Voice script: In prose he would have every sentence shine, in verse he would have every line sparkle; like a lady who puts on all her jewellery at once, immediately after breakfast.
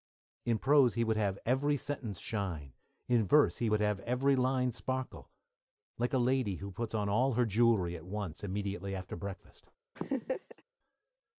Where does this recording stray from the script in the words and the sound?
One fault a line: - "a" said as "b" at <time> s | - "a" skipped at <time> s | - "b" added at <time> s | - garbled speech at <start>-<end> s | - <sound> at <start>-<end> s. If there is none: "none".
- laugh at 10.0-10.6 s